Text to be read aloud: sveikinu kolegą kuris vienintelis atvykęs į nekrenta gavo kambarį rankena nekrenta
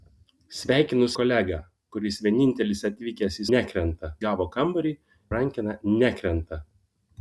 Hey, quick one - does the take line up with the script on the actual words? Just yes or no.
yes